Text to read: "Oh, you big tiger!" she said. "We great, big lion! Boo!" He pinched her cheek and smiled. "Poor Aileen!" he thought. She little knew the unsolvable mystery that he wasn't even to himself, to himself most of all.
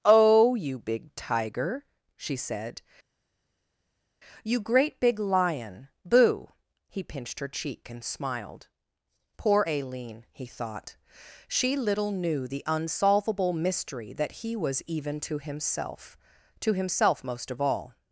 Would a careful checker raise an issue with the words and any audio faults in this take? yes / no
yes